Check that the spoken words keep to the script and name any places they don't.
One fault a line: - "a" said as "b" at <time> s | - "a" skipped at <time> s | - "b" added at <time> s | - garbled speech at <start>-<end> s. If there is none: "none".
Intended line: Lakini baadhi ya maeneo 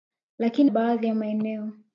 none